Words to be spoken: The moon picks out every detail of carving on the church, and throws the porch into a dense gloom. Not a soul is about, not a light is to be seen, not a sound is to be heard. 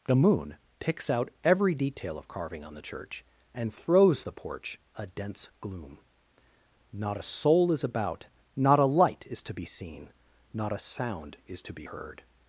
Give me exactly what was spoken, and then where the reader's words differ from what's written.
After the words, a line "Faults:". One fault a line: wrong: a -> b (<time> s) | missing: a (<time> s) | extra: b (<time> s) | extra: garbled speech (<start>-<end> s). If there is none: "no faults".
The moon picks out every detail of carving on the church, and throws the porch a dense gloom. Not a soul is about, not a light is to be seen, not a sound is to be heard.
Faults:
missing: into (4.8 s)